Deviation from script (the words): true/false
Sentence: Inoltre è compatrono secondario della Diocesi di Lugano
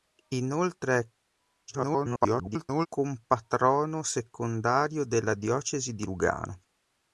true